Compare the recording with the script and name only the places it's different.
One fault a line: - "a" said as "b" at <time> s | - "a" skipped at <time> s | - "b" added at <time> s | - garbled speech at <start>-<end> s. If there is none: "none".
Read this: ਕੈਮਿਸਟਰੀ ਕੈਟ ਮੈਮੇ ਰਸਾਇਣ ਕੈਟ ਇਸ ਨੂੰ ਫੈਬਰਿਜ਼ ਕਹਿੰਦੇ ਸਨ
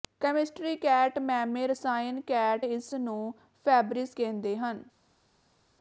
- "ਸਨ" said as "ਹਨ" at 4.6 s